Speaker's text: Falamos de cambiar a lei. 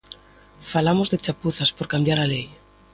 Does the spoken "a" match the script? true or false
true